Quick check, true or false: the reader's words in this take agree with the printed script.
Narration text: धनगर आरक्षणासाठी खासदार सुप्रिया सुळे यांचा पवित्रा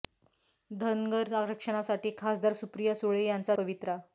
true